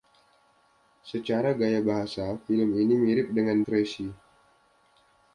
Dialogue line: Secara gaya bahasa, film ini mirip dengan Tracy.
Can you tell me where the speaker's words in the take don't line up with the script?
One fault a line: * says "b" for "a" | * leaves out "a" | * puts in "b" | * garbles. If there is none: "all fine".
all fine